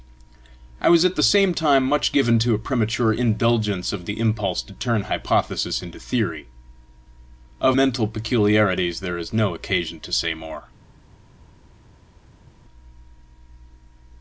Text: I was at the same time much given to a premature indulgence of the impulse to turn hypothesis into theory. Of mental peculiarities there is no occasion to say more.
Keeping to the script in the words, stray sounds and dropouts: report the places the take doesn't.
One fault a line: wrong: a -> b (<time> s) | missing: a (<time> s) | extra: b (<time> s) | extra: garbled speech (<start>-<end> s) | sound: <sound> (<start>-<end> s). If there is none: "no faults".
no faults